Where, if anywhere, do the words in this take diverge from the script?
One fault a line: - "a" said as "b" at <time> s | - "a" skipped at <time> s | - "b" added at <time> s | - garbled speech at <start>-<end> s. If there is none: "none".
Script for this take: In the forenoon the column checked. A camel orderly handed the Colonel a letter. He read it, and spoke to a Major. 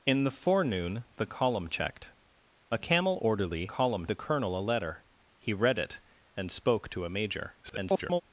- "handed" said as "column" at 3.7 s
- garbled speech at 7.6-8.2 s